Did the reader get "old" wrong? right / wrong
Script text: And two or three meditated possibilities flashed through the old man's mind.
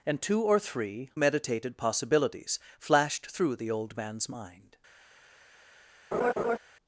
right